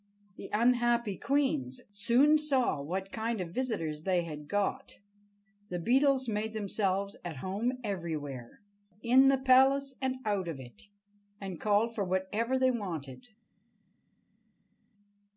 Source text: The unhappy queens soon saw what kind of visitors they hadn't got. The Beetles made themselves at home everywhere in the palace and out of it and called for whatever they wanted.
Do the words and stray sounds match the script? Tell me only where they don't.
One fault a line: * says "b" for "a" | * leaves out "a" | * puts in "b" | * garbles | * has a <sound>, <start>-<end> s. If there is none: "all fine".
* says "had" for "hadn't"